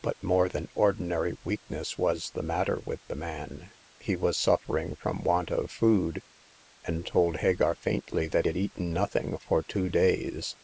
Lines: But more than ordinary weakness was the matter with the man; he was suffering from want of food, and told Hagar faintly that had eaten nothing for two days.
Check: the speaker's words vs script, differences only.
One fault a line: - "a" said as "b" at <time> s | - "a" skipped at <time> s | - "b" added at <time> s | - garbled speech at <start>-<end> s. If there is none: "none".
none